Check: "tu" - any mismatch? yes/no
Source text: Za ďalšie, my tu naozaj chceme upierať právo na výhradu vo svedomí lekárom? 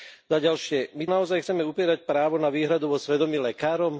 yes